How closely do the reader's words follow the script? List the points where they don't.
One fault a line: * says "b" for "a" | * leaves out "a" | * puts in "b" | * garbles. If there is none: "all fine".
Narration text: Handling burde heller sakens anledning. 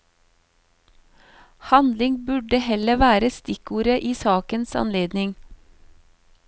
* puts in "være stikkordet i"